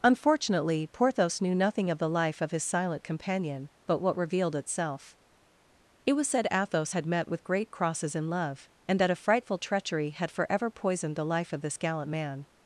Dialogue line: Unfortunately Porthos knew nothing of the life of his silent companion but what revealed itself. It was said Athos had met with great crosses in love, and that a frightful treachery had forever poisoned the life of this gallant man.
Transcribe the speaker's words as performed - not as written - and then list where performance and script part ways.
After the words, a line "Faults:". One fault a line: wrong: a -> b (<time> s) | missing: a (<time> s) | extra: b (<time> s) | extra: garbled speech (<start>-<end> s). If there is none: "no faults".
Unfortunately Porthos knew nothing of the life of his silent companion but what revealed itself. It was said Athos had met with great crosses in love, and that a frightful treachery had forever poisoned the life of this gallant man.
Faults:
no faults